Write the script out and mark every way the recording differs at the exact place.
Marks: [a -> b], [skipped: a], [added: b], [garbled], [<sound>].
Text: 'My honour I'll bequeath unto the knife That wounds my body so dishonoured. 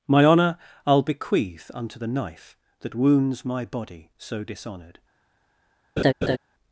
'My honour I'll bequeath unto the knife That wounds my body so dishonoured. [laugh]